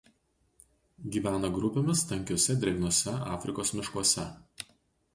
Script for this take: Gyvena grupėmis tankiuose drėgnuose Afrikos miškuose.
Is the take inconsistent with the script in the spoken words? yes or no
no